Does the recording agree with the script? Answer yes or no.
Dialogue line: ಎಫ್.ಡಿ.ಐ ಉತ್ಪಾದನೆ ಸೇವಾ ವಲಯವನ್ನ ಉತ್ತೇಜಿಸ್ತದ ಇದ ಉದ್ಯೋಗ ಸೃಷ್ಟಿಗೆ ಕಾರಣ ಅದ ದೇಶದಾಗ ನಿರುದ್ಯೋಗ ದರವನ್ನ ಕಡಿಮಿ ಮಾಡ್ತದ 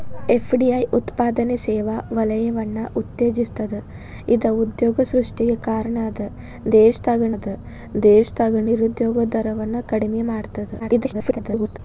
no